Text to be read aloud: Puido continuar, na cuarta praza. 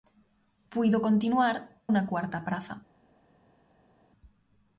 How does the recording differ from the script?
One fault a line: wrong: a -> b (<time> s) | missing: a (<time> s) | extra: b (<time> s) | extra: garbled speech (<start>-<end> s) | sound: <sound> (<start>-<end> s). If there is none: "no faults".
no faults